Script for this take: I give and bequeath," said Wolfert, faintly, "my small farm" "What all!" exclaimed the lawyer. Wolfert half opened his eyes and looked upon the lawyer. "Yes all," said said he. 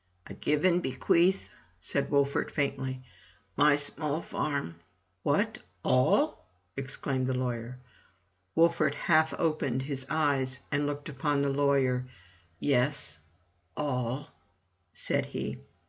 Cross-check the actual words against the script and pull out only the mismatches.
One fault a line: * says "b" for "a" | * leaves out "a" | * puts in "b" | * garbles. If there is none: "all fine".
* leaves out "said"